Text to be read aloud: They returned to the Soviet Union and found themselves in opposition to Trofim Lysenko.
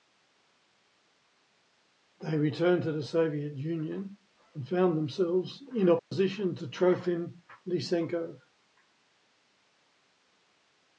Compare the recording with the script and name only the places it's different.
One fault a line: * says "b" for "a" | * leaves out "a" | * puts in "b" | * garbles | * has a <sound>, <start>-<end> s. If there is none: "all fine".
* has a dropout, 6.0-6.1 s